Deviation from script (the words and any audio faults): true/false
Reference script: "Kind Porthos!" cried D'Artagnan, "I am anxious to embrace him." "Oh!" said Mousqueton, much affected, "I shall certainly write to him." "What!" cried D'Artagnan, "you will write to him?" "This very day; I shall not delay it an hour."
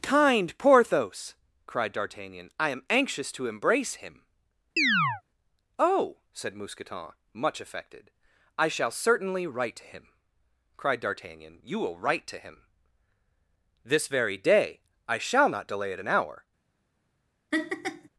true